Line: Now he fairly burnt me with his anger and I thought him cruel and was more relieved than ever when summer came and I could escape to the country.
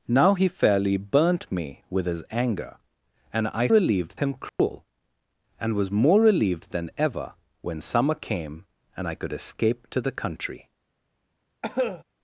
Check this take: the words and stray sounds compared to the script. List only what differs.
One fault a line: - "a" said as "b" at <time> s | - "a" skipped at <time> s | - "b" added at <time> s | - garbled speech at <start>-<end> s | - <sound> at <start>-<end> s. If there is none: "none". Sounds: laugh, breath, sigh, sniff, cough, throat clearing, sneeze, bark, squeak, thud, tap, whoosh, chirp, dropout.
- "thought" said as "relieved" at 3.7 s
- dropout at 4.5-4.6 s
- cough at 11.6-12.0 s